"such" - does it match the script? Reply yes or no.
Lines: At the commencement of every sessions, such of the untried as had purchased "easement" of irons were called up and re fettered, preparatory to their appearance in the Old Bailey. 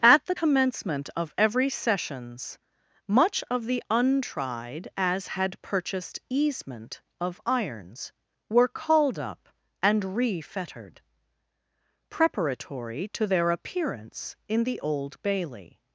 no